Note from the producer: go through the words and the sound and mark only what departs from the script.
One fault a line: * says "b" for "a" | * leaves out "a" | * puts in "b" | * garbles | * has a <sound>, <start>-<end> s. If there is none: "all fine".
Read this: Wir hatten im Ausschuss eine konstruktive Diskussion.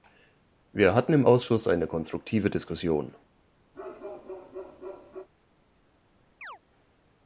* has a bark, 3.7-5.3 s
* has a chirp, 6.4-6.6 s